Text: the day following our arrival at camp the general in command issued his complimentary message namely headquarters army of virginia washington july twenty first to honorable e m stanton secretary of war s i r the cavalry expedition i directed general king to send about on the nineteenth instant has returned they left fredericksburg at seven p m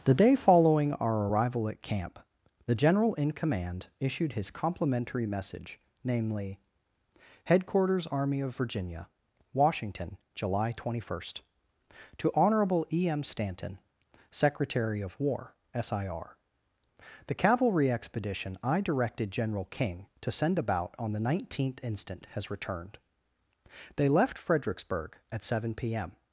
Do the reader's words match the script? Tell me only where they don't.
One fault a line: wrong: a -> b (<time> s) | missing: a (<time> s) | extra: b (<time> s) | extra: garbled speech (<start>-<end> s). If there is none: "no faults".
no faults